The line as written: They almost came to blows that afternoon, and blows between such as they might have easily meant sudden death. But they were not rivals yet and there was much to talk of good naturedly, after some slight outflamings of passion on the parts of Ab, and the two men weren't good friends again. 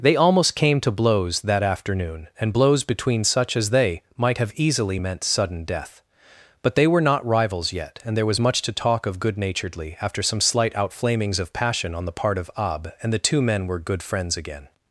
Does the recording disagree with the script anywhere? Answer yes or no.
yes